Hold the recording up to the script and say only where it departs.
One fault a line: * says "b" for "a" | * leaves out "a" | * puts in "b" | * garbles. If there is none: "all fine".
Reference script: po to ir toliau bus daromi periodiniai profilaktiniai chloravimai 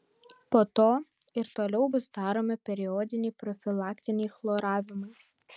all fine